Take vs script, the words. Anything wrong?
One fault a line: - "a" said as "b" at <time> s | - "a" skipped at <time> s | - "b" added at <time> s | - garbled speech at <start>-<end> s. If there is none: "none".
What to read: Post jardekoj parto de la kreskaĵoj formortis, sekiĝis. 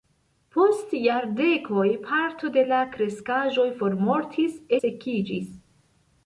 none